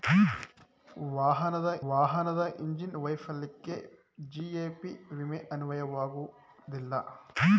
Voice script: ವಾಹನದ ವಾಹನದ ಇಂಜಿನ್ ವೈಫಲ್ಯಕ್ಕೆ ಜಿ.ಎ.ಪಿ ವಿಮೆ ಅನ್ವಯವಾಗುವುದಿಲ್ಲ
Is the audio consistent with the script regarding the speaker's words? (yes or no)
yes